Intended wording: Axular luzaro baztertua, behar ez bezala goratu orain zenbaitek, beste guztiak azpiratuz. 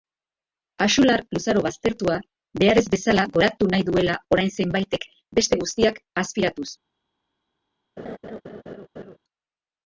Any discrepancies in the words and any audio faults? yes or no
yes